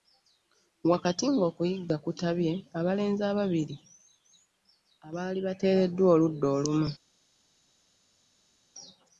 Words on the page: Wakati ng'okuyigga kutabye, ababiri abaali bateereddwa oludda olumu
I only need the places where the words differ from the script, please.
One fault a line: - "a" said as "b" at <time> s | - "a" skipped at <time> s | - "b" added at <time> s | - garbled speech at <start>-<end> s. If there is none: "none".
- "abalenzi" added at 2.8 s